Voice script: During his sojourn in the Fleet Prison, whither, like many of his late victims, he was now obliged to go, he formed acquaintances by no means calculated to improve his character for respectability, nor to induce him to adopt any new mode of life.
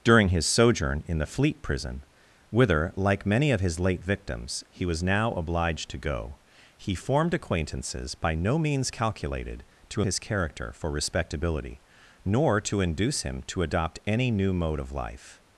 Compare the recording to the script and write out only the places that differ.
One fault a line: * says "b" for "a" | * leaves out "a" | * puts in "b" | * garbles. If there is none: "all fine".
* leaves out "improve"